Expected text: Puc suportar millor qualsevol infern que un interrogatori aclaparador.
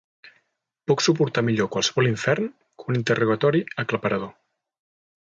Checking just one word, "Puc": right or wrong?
right